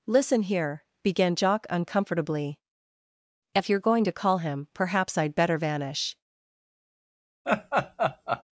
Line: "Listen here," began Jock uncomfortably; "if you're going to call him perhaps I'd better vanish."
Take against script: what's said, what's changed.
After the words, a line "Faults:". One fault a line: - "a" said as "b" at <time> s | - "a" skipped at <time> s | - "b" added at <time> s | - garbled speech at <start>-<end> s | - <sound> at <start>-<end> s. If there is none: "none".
"Listen here," began Jock uncomfortably; "if you're going to call him perhaps I'd better vanish."
Faults:
- laugh at 7.4-8.4 s